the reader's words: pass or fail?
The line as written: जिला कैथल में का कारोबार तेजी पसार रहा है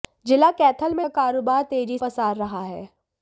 pass